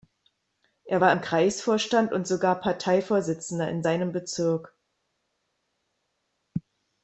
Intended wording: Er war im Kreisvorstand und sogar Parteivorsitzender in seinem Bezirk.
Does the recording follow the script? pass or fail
pass